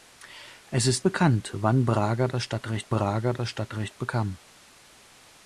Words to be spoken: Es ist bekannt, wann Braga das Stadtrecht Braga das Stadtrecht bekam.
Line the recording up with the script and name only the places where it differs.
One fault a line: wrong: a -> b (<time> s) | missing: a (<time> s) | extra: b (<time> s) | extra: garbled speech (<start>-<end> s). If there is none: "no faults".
no faults